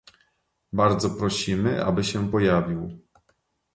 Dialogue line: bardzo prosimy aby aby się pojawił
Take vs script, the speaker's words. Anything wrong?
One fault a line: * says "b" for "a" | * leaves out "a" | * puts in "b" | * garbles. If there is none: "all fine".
* leaves out "aby"